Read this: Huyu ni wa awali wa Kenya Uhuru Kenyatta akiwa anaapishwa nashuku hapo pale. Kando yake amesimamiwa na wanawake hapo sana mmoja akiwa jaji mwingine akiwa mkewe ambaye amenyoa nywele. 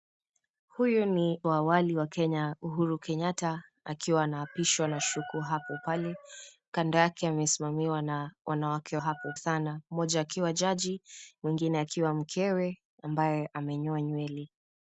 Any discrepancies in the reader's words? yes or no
no